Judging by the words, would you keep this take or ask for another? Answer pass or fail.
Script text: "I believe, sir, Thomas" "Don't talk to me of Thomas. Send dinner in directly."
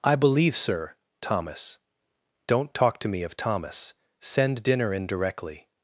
pass